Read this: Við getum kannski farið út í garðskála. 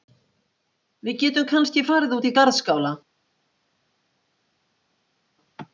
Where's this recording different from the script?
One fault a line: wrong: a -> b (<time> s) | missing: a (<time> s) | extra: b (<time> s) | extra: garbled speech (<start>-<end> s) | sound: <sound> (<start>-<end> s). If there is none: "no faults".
no faults